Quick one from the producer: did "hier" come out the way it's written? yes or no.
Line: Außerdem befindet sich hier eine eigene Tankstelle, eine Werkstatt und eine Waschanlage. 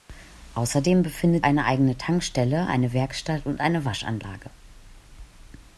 no